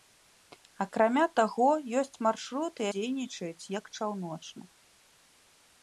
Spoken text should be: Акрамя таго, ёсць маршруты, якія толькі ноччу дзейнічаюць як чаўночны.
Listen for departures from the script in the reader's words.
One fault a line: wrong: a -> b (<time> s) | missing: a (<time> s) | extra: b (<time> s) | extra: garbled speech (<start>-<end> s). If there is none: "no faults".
missing: якія толькі ноччу (2.8 s)